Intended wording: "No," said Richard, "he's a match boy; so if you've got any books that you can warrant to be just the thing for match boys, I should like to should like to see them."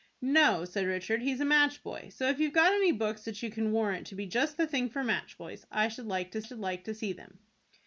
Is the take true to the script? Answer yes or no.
yes